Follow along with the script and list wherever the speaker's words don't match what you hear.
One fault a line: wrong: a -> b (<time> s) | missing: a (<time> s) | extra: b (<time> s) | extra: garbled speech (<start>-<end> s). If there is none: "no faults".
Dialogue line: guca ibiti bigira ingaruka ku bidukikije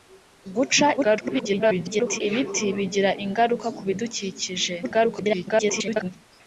extra: garbled speech (1.0-2.2 s)
extra: garbled speech (4.8-6.1 s)